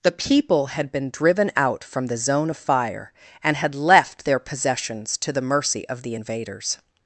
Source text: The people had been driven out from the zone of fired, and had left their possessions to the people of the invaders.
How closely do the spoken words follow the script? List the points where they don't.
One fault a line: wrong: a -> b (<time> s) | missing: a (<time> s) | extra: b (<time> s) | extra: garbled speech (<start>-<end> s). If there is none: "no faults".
wrong: fired -> fire (2.6 s)
wrong: people -> mercy (5.4 s)